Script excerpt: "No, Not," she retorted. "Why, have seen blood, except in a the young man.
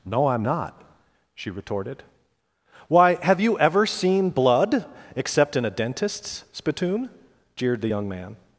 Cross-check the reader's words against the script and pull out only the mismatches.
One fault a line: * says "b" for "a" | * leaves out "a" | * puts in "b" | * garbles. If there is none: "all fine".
* puts in "I'm"
* puts in "you ever"
* puts in "dentist's spittoon jeered"